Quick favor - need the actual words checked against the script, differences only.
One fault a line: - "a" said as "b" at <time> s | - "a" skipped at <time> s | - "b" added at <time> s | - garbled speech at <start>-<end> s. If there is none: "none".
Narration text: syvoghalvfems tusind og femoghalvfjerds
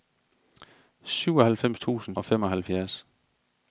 none